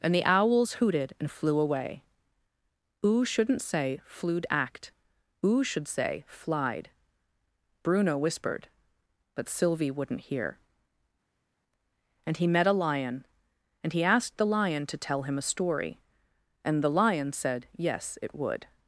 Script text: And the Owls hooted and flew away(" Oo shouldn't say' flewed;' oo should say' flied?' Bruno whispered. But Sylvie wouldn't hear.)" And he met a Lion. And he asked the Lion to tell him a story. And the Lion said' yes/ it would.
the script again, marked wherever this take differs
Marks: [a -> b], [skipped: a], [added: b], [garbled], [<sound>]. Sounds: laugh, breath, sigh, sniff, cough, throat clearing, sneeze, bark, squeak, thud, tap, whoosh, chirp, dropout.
And the Owls hooted and flew away(" Oo shouldn't say' flewed;' [added: act] oo should say' flied?' Bruno whispered. But Sylvie wouldn't hear.)" And he met a Lion. And he asked the Lion to tell him a story. And the Lion said' yes/ it would.